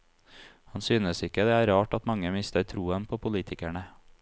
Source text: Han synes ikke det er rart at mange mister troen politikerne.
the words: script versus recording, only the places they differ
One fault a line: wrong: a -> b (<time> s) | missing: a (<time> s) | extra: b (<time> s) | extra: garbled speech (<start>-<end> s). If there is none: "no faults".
extra: på (3.1 s)